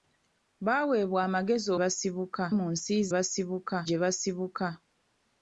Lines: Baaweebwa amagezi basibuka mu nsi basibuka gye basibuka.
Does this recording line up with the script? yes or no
yes